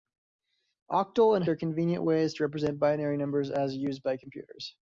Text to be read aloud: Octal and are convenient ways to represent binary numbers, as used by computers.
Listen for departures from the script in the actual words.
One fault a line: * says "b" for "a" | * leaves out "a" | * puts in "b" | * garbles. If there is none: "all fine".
all fine